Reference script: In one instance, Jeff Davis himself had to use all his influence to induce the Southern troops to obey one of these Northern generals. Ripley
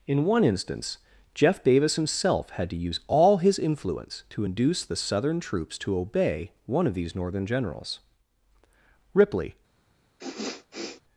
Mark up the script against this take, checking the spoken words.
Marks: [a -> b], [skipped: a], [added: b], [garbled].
In one instance, Jeff Davis himself had to use all his influence to induce the Southern troops to obey one of these Northern generals. Ripley